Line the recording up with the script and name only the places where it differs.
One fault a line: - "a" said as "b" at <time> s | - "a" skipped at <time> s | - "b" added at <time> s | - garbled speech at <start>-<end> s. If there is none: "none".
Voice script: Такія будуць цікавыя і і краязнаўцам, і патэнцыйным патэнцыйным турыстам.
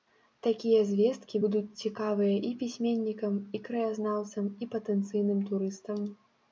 - "звесткі" added at 0.9 s
- "пісьменнікам" added at 2.6 s
- "патэнцыйным" skipped at 5.4 s